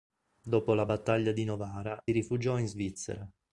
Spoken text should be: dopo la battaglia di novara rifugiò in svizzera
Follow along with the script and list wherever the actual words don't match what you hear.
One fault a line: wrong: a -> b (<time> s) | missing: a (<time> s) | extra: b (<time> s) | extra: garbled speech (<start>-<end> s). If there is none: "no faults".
no faults